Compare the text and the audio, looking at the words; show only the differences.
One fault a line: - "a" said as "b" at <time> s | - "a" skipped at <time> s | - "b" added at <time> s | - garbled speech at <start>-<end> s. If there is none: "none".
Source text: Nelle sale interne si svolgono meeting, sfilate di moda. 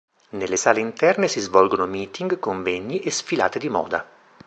- "convegni e" added at 2.4 s